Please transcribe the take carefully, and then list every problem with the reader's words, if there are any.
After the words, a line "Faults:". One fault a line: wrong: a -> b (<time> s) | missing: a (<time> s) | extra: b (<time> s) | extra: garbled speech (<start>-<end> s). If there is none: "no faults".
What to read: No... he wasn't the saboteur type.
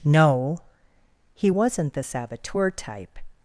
No... he wasn't the saboteur type.
Faults:
no faults